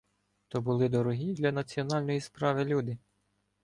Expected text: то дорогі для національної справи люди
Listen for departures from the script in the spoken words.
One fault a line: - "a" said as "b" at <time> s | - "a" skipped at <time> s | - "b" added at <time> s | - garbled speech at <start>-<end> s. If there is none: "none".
- "були" added at 0.6 s